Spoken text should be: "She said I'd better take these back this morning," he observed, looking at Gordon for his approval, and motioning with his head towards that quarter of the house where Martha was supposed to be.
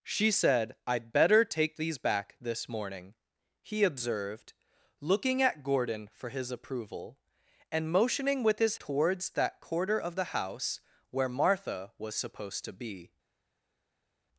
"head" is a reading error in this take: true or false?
true